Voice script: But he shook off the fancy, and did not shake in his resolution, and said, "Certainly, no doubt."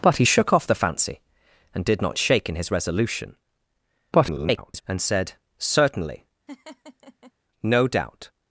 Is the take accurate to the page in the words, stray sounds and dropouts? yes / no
no